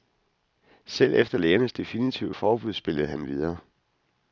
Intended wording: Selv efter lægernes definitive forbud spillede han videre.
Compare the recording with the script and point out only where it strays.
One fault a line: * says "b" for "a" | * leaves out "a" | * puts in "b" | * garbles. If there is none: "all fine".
all fine